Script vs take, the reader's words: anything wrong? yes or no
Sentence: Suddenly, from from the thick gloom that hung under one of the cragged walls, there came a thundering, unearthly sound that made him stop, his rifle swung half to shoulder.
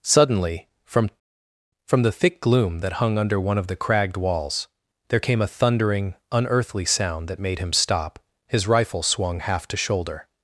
no